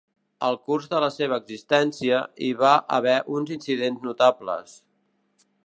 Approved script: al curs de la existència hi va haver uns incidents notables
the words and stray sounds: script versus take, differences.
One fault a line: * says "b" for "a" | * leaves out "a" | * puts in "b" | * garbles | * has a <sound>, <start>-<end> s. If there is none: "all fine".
* puts in "seva"